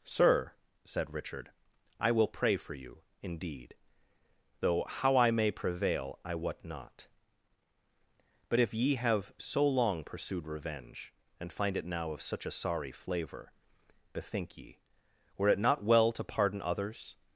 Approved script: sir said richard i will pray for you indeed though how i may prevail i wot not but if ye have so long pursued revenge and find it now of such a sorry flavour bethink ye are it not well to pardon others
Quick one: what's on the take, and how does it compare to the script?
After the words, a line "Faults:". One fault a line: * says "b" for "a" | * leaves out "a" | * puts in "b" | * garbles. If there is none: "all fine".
sir said richard i will pray for you indeed though how i may prevail i wot not but if ye have so long pursued revenge and find it now of such a sorry flavour bethink ye were it not well to pardon others
Faults:
* says "were" for "are"